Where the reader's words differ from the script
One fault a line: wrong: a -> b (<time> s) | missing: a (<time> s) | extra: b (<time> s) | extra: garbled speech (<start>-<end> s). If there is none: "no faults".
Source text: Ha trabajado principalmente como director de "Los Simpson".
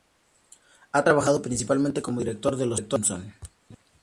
no faults